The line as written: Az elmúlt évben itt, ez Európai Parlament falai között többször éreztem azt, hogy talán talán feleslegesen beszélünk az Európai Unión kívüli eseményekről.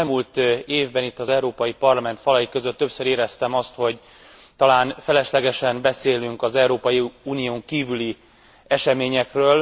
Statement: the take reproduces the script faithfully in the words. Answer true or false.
false